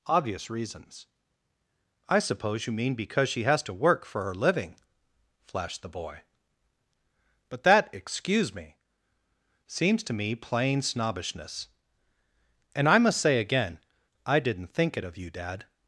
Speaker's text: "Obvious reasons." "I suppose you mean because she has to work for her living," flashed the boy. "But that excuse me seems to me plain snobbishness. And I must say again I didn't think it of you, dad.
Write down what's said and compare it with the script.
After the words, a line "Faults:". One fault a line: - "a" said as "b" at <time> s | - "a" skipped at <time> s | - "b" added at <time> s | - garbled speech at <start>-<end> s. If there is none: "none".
"Obvious reasons." "I suppose you mean because she has to work for her living," flashed the boy. "But that excuse me seems to me plain snobbishness. And I must say again I didn't think it of you, dad.
Faults:
none